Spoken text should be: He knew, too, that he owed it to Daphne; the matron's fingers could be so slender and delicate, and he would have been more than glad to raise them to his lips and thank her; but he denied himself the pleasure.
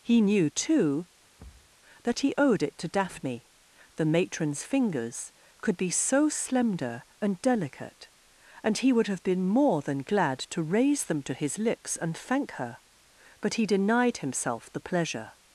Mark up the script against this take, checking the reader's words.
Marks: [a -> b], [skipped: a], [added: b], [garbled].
He knew, too, that he owed it to Daphne; the matron's fingers could be so slender and delicate, and he would have been more than glad to raise them to his lips and thank her; but he denied himself the pleasure.